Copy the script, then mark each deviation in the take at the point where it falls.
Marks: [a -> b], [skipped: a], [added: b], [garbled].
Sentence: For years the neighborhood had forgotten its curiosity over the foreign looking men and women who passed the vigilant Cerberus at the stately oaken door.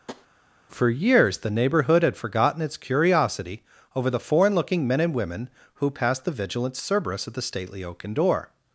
For years the neighborhood had forgotten its curiosity over the foreign looking men and women who passed the vigilant Cerberus at the stately oaken door.